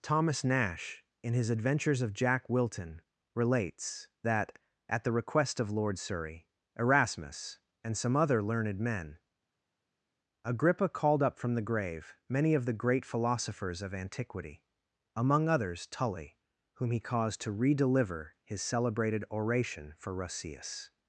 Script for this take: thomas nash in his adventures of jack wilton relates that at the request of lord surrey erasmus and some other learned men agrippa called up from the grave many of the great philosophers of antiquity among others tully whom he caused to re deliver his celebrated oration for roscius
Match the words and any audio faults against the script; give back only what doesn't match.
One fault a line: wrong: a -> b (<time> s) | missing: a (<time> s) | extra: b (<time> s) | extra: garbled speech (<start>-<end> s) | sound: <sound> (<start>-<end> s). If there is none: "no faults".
no faults